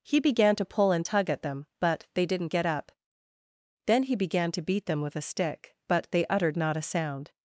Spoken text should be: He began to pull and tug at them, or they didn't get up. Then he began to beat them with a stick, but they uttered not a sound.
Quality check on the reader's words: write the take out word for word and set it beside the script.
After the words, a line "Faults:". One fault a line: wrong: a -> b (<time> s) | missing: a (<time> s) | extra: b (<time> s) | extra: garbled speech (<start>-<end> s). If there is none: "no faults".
He began to pull and tug at them, but they didn't get up. Then he began to beat them with a stick, but they uttered not a sound.
Faults:
wrong: or -> but (1.8 s)